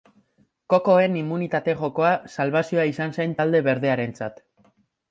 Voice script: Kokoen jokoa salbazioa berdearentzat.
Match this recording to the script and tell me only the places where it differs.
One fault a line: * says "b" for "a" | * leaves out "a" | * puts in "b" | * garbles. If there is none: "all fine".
* puts in "immunitate"
* puts in "izan zen talde"